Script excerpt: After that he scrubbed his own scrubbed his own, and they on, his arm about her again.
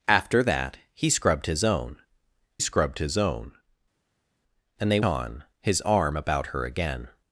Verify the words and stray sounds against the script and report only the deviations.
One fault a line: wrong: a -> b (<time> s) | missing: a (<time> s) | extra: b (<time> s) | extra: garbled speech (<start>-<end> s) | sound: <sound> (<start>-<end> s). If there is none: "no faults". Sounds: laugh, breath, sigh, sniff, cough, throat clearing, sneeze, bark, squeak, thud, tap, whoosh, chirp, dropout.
no faults